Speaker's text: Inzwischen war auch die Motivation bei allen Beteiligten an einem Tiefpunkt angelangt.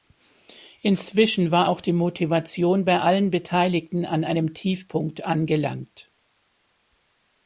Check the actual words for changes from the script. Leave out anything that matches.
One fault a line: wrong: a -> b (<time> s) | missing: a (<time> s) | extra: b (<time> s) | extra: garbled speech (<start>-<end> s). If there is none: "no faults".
no faults